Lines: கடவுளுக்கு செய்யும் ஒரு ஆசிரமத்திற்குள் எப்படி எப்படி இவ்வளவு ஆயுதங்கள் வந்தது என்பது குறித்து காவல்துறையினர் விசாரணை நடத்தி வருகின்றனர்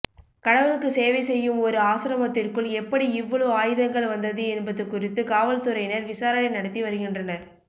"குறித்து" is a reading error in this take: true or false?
false